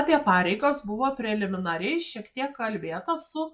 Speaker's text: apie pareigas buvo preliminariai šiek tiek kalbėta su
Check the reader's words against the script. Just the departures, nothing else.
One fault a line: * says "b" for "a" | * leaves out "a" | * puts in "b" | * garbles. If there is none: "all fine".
all fine